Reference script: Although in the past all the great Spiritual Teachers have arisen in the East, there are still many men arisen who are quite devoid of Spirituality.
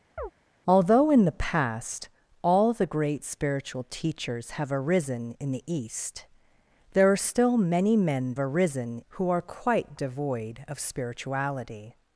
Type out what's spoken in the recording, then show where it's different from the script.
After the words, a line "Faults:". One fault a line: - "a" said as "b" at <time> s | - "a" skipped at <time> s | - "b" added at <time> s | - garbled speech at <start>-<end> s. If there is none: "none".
Although in the past all the great Spiritual Teachers have arisen in the East, there are still many men arisen who are quite devoid of Spirituality.
Faults:
none